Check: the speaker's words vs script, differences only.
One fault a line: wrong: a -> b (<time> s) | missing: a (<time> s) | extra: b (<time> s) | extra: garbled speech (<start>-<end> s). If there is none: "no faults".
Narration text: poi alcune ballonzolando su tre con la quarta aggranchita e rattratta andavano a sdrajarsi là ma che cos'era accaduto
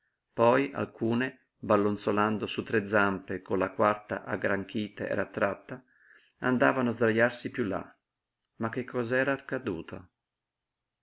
extra: zampe (2.9 s)
extra: piú (7.5 s)